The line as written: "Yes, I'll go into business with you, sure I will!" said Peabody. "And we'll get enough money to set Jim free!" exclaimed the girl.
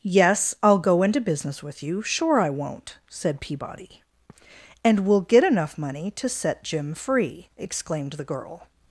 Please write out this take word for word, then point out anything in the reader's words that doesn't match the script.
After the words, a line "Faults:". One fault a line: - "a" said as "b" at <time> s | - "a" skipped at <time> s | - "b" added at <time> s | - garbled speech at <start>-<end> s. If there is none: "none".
"Yes, I'll go into business with you, sure I won't!" said Peabody. "And we'll get enough money to set Jim free!" exclaimed the girl.
Faults:
- "will" said as "won't" at 2.5 s